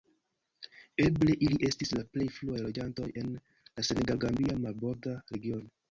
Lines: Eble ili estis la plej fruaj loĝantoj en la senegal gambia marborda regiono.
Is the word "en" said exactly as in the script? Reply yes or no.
yes